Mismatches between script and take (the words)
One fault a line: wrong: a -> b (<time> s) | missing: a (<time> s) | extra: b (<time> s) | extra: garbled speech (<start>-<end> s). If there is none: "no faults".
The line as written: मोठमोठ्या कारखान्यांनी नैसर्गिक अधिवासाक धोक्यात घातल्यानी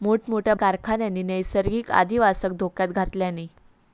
no faults